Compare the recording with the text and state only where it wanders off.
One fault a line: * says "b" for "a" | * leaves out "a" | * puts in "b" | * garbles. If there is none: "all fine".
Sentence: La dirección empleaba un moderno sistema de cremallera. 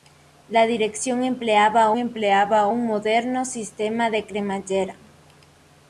* puts in "empleaba"